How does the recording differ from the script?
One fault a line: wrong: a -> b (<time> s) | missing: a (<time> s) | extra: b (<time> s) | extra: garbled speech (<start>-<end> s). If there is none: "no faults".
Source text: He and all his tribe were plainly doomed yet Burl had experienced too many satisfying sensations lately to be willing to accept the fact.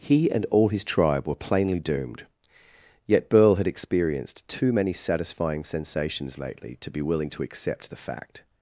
no faults